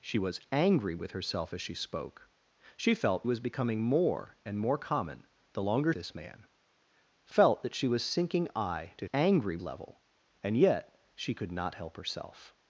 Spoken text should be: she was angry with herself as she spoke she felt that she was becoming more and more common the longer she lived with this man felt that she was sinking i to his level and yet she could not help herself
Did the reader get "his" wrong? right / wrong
wrong